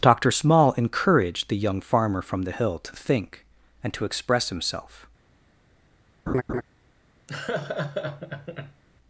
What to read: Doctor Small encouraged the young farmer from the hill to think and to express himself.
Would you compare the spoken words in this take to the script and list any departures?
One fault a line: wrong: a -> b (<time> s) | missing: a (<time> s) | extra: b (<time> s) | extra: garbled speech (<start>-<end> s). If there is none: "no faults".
no faults